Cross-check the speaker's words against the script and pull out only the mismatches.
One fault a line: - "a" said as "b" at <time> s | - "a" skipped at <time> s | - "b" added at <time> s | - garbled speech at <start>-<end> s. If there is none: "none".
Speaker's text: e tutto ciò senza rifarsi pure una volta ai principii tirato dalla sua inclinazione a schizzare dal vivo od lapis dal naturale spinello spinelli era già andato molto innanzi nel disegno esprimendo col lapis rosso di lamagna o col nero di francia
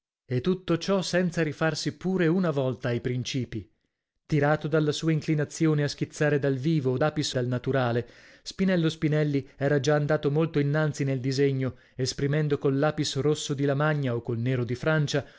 none